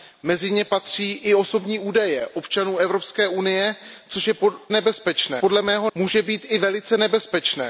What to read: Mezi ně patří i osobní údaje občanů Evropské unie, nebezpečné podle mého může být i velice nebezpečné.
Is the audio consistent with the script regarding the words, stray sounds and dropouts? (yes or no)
yes